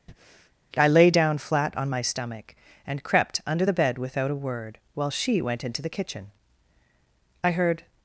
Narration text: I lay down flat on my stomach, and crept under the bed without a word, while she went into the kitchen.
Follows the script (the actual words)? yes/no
no